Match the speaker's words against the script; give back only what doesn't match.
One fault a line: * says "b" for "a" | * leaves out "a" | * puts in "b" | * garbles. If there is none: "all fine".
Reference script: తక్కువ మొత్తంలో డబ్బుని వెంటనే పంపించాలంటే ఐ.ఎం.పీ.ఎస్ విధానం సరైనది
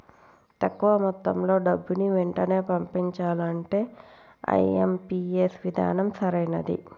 all fine